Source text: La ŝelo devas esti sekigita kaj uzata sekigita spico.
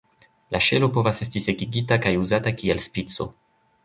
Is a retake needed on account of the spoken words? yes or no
yes